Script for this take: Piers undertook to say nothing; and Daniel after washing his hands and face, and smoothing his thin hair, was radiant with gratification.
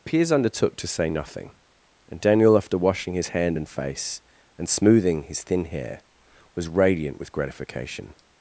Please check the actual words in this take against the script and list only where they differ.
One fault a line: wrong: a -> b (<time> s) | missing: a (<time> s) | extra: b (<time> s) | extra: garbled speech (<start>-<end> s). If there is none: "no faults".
wrong: hands -> hand (3.3 s)